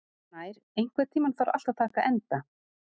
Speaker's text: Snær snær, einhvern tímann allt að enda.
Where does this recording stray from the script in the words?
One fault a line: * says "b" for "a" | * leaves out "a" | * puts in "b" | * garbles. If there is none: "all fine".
* leaves out "snær"
* puts in "þarf"
* puts in "taka"